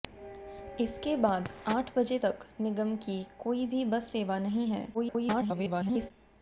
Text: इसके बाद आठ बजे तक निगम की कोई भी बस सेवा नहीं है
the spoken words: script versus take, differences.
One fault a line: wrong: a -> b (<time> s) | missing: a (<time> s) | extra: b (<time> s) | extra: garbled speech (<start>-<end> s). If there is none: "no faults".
extra: garbled speech (4.9-6.1 s)